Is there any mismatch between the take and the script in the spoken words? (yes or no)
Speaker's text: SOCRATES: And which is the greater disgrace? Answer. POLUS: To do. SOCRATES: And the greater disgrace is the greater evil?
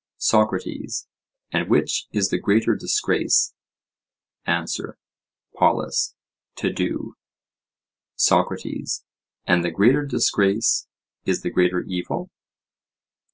no